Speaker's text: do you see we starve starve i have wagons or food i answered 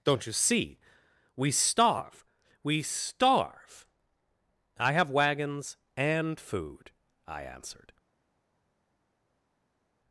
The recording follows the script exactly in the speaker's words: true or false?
false